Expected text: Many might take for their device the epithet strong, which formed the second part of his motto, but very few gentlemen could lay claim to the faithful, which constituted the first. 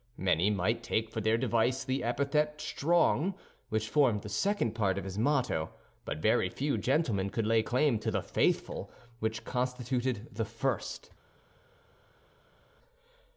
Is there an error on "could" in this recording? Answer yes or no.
no